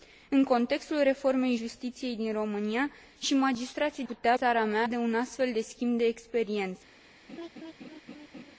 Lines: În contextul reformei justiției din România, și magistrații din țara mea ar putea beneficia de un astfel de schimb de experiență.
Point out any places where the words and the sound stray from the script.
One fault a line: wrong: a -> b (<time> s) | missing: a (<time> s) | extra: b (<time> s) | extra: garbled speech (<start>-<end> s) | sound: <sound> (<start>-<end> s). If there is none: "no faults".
wrong: din -> putea (4.1 s)
missing: ar putea beneficia (4.8 s)
sound: laugh (7.3-8.6 s)